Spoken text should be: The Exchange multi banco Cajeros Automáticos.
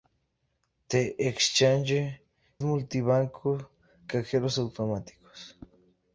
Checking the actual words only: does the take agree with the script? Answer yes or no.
yes